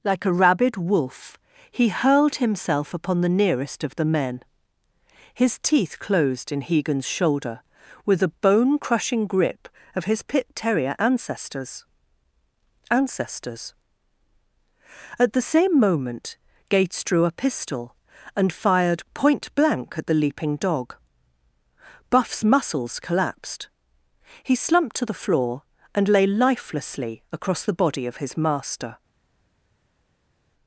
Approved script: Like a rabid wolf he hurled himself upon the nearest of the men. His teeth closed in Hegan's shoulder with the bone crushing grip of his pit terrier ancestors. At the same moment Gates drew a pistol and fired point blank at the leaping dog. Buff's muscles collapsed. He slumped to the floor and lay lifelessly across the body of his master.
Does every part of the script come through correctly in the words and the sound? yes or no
no